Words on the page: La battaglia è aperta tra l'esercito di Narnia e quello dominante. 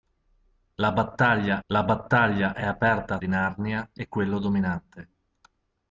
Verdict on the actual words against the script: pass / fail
fail